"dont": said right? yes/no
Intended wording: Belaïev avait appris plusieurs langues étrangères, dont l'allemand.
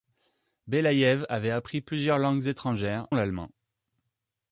no